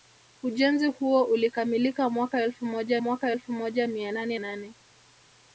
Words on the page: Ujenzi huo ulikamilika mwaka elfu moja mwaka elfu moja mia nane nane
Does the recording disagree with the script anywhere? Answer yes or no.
no